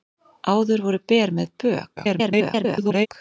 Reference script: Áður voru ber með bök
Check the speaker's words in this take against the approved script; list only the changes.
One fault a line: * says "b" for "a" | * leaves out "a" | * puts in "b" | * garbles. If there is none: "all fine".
* garbles